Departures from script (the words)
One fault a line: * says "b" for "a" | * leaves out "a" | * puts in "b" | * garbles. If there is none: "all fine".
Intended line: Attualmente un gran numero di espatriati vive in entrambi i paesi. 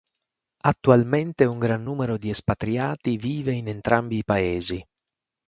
all fine